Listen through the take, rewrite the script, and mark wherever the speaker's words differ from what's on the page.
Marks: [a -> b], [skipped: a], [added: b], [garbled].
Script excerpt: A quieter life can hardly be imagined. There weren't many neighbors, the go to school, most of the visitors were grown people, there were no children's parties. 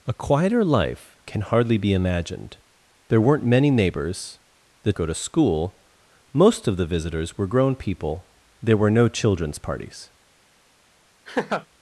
A quieter life can hardly be imagined. There weren't many neighbors, the go to school, most of the visitors were grown people, there were no children's parties.